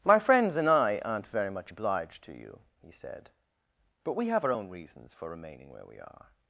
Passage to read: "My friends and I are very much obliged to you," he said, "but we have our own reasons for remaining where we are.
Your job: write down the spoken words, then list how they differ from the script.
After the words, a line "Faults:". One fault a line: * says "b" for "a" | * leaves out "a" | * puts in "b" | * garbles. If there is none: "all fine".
"My friends and I aren't very much obliged to you," he said, "but we have our own reasons for remaining where we are.
Faults:
* says "aren't" for "are"